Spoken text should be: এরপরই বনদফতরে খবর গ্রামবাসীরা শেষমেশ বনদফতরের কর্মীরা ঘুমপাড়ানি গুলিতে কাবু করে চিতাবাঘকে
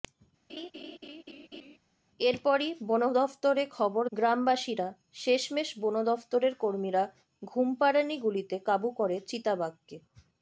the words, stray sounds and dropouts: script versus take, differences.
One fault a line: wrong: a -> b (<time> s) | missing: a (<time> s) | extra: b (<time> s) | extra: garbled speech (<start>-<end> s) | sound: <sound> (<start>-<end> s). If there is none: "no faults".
sound: laugh (0.5-1.8 s)